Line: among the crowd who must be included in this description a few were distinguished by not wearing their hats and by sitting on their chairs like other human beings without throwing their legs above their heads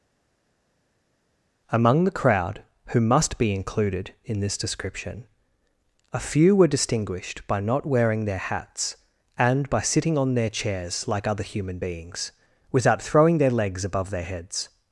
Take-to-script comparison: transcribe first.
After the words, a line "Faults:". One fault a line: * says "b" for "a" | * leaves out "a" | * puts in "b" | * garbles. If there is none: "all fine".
among the crowd who must be included in this description a few were distinguished by not wearing their hats and by sitting on their chairs like other human beings without throwing their legs above their heads
Faults:
all fine